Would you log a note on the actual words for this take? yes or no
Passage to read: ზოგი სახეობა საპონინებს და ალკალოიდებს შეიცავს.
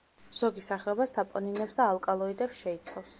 no